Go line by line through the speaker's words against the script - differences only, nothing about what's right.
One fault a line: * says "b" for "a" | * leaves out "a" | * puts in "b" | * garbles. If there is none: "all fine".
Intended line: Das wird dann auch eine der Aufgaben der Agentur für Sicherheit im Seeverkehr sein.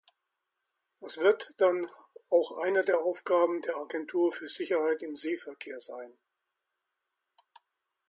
all fine